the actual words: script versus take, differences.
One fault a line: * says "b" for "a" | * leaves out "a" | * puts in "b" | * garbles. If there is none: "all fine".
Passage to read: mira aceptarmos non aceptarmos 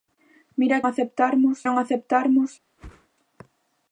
all fine